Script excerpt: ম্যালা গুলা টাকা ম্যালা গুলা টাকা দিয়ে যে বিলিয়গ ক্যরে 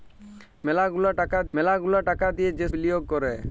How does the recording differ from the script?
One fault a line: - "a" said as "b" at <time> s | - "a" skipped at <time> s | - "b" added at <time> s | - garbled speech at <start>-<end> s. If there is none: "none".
none